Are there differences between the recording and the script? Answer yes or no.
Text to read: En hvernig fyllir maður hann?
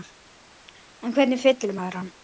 no